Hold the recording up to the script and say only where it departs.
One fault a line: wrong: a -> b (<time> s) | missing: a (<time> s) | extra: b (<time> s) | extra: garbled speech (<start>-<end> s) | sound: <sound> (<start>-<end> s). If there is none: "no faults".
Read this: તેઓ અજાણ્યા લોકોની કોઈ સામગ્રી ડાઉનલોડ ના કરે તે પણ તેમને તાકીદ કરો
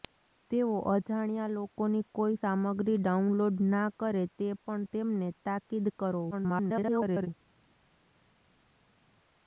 extra: garbled speech (6.3-7.3 s)